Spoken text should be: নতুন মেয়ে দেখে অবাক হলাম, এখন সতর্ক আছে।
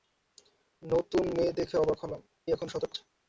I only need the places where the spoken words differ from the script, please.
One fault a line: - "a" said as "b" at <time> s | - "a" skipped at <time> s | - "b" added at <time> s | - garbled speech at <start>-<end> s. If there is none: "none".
none